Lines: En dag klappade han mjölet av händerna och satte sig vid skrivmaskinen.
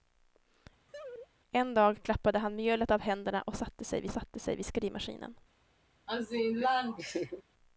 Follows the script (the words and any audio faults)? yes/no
no